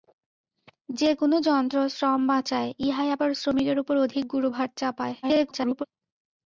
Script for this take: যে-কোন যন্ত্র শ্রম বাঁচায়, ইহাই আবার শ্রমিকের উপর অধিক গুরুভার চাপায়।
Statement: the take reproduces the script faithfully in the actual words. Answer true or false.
false